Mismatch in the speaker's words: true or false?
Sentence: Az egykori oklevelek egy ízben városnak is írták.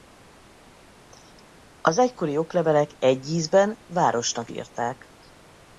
true